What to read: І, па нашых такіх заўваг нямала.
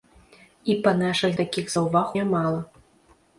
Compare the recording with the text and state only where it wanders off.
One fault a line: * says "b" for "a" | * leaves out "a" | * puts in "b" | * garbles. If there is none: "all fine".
all fine